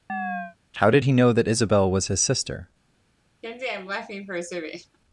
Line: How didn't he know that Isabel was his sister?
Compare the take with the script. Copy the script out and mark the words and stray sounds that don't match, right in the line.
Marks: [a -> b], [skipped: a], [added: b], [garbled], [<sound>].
[chirp] How [didn't -> did] he know that Isabel was his sister? [laugh]